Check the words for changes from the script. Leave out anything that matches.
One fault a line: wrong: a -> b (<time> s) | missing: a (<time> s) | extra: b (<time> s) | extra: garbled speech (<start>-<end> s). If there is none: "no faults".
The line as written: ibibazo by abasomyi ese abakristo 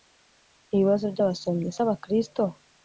no faults